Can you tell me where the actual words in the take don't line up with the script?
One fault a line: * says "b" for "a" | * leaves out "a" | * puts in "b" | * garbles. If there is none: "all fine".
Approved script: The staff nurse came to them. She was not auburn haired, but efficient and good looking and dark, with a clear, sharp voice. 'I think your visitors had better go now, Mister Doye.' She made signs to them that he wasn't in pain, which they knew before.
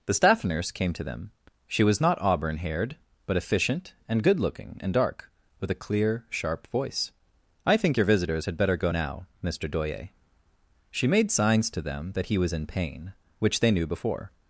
* says "was" for "wasn't"